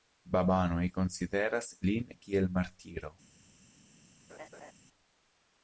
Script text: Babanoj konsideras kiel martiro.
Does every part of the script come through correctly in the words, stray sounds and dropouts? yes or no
no